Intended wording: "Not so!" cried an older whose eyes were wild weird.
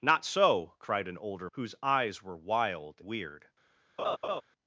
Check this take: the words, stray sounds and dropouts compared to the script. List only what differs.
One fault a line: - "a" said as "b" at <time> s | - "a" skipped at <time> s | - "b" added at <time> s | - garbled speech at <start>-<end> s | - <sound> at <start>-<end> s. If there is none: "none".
- laugh at 4.0-4.4 s